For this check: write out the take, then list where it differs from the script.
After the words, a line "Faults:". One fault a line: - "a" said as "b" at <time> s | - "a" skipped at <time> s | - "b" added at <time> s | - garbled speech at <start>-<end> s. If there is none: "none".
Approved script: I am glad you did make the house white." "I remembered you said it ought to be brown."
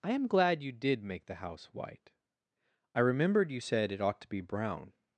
I am glad you did make the house white." "I remembered you said it ought to be brown."
Faults:
none